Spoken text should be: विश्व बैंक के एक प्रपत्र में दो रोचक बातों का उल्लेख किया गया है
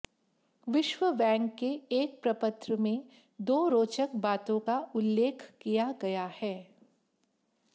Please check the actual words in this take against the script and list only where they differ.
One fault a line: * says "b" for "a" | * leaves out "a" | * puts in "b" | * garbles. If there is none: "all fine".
all fine